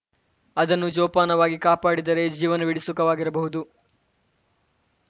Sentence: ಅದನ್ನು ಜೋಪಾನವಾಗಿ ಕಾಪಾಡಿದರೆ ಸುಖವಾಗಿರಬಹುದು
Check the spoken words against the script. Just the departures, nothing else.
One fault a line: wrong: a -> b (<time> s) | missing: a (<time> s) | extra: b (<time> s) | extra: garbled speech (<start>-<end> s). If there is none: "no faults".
extra: ಜೀವನವೀಡಿ (2.3 s)